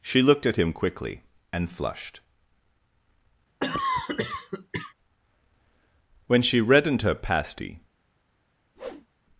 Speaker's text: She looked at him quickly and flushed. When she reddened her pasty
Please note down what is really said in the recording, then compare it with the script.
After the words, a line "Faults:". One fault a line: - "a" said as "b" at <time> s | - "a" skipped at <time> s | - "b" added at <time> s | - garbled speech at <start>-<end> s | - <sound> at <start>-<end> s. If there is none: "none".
She looked at him quickly and flushed. When she reddened her pasty
Faults:
- cough at 3.6-4.9 s
- whoosh at 8.8-9.1 s